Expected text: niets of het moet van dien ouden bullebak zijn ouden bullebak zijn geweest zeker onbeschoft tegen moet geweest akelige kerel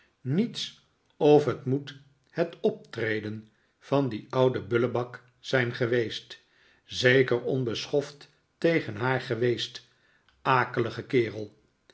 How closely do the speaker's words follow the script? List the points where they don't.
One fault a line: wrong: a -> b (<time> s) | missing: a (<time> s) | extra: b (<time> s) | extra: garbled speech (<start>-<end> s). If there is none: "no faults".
extra: het optreden (2.3 s)
missing: ouden bullebak zijn (5.7 s)
wrong: moet -> haar (8.9 s)